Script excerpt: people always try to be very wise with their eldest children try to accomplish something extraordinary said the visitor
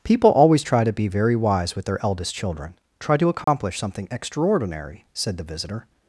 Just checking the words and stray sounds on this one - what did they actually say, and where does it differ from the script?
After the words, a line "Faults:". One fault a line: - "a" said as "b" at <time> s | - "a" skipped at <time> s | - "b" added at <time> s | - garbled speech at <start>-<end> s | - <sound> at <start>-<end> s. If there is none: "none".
people always try to be very wise with their eldest children try to accomplish something extraordinary said the visitor
Faults:
- dropout at 3.4-3.5 s